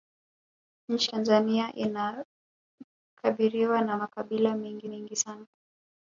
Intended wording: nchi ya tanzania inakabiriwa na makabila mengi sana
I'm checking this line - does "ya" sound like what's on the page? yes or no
no